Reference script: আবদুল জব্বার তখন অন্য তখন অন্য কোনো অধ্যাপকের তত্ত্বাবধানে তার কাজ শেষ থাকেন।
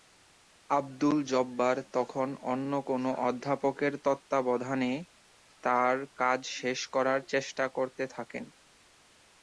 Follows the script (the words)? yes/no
no